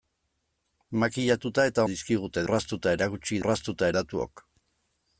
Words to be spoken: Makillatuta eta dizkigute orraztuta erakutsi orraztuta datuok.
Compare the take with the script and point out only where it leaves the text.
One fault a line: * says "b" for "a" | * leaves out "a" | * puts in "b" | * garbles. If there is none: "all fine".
all fine